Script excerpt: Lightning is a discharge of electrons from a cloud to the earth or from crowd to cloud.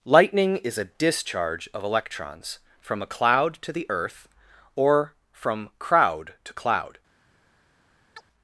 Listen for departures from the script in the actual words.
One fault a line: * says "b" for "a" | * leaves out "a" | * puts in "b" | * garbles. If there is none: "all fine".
all fine